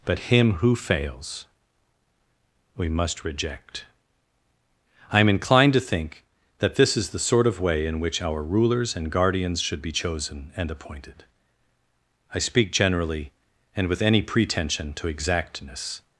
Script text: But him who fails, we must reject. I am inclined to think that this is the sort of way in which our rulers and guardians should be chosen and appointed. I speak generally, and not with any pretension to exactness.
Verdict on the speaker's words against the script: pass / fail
fail